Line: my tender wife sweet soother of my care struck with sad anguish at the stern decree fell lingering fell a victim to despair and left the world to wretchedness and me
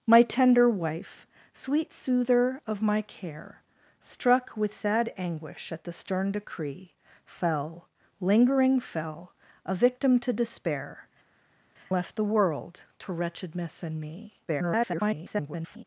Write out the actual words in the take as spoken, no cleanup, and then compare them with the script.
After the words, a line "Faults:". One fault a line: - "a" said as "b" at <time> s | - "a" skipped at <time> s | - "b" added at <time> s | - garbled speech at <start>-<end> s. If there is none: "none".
my tender wife sweet soother of my care struck with sad anguish at the stern decree fell lingering fell a victim to despair left the world to wretchedness and me [garbled]
Faults:
- "and" skipped at 11.1 s
- garbled speech at 14.5-15.8 s